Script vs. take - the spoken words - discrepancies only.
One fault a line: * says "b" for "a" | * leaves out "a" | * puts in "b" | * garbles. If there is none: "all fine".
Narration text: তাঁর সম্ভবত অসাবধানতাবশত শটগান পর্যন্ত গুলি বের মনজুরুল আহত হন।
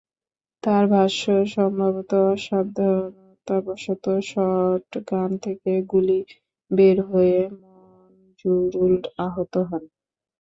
* puts in "ভাষ্য"
* says "থেকে" for "পর্যন্ত"
* puts in "হয়ে"